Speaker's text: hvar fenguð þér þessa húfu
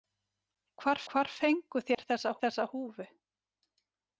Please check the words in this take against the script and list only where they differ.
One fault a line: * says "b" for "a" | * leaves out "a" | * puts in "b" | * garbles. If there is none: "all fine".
* puts in "hvar"
* puts in "þessa"